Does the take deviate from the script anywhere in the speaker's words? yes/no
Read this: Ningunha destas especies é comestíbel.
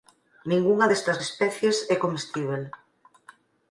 no